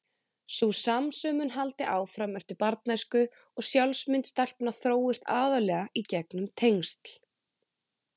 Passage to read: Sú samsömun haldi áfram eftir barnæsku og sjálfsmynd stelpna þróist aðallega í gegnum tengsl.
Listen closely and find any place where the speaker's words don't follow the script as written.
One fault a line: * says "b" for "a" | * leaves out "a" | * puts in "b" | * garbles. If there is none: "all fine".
all fine